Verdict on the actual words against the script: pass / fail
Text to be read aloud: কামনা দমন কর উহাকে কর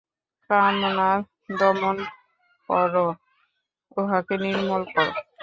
fail